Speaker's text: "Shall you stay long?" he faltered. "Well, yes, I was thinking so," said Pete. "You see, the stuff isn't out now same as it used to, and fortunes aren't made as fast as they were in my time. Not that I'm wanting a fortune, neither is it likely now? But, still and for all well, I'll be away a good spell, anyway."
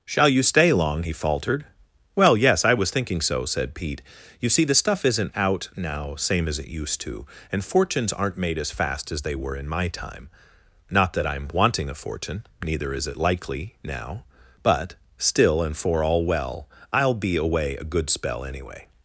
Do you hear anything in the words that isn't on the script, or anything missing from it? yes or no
no